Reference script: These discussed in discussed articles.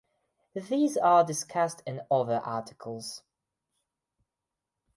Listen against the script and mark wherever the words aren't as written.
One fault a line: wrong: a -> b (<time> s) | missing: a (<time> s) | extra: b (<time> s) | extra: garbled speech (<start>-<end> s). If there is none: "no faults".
extra: are (1.0 s)
wrong: discussed -> other (2.1 s)